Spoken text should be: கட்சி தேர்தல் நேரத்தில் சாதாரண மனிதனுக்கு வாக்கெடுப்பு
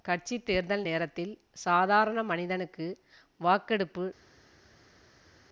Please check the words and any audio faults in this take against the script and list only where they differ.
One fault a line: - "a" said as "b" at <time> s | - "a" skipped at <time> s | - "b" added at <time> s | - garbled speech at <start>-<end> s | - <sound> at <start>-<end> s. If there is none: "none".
none